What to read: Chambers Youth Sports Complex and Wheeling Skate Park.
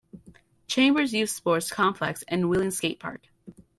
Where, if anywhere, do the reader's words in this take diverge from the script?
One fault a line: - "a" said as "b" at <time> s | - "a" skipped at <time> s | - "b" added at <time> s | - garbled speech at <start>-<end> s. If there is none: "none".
none